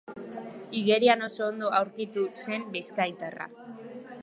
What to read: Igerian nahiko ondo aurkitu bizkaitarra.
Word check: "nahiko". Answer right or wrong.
wrong